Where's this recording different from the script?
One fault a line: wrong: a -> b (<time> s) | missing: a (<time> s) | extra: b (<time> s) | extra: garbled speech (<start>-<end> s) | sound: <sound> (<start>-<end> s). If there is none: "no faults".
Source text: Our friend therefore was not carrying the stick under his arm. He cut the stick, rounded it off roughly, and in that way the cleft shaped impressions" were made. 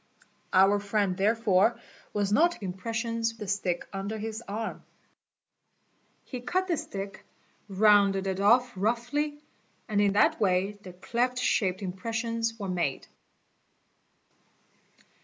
wrong: carrying -> impressions (2.6 s)